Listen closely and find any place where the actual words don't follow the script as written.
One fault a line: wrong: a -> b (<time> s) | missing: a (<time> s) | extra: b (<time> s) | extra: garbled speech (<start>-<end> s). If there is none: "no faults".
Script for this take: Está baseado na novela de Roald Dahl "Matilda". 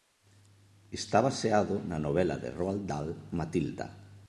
no faults